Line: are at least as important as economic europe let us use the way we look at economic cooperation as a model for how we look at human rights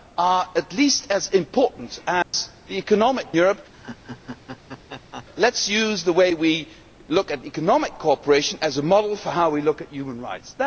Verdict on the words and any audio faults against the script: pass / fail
fail